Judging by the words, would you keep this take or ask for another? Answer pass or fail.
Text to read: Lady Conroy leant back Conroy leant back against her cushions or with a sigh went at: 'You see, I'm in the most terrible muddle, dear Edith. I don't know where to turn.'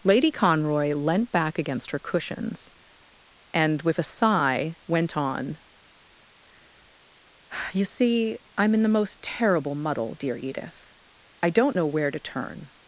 fail